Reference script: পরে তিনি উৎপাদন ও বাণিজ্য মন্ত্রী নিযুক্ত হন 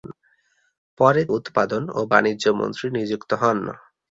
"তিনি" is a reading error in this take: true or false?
true